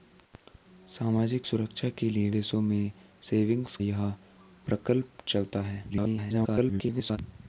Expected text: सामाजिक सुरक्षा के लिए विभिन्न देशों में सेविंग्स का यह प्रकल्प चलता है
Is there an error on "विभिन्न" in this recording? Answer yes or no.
yes